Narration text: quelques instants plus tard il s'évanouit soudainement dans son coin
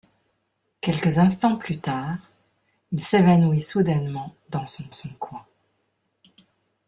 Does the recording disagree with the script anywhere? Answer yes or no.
yes